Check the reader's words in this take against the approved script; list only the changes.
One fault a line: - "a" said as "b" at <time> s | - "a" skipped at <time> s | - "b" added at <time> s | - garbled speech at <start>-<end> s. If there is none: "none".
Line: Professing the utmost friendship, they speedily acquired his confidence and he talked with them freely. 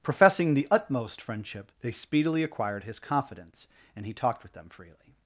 none